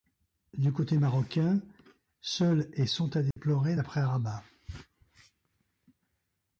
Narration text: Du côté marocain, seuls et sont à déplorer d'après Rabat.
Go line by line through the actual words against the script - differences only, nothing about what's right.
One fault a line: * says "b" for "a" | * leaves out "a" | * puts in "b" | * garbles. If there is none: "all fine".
all fine